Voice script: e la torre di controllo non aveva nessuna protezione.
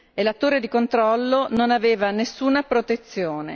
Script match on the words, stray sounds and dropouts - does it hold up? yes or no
yes